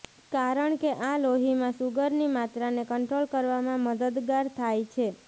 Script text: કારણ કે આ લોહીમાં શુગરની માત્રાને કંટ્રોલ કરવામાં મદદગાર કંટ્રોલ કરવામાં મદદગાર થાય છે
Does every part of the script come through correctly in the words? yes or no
no